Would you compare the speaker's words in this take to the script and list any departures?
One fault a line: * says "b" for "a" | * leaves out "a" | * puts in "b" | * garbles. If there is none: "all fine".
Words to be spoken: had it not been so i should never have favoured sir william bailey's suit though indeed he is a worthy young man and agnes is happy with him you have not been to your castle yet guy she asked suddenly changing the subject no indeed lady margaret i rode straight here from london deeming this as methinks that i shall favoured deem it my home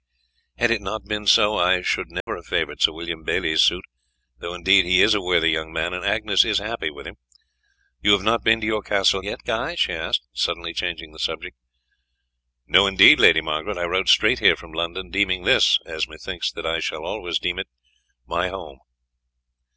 * says "always" for "favoured"